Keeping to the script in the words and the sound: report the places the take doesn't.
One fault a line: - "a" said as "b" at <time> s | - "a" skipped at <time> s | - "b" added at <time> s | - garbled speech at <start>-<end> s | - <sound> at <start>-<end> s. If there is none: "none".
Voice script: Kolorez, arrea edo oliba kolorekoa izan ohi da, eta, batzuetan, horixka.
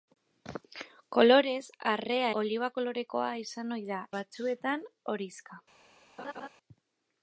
- "edo" skipped at 2.3 s
- "eta" skipped at 4.0 s
- laugh at 6.2-6.5 s